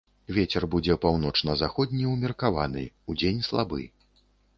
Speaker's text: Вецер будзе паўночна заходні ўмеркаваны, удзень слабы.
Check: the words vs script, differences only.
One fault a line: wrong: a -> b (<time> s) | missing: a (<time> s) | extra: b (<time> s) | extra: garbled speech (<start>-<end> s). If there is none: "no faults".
no faults